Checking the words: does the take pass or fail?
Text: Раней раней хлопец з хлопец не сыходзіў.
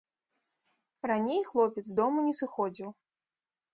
fail